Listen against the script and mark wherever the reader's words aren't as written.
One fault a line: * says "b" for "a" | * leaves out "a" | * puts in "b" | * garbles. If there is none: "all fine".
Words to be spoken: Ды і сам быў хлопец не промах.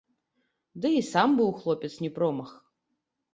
all fine